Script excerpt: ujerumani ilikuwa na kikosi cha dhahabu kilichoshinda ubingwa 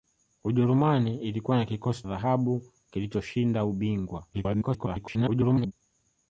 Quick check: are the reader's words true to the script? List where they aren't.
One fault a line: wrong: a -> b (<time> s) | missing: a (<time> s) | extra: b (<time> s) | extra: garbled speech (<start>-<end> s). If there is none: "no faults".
missing: cha (2.0 s)
extra: garbled speech (4.3-5.7 s)